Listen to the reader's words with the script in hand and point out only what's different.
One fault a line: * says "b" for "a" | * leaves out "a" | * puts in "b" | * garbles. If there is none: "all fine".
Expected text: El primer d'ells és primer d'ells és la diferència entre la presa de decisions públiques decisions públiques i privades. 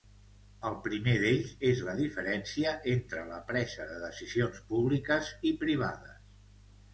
* leaves out "primer d'ells és"
* leaves out "decisions públiques"